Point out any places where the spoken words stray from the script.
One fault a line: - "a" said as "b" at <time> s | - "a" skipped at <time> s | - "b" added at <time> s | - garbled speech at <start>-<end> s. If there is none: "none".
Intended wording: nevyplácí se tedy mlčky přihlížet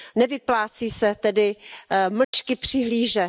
none